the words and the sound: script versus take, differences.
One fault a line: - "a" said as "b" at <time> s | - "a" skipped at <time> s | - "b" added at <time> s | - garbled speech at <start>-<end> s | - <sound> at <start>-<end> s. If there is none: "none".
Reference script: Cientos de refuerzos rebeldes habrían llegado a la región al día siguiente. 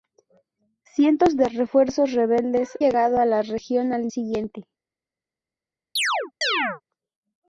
- "habrían" skipped at 2.8 s
- "día" skipped at 4.1 s
- chirp at 6.0-6.8 s